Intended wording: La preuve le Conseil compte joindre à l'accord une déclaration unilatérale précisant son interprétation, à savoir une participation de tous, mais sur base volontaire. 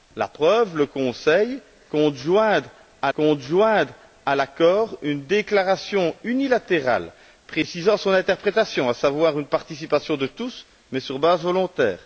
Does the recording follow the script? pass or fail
fail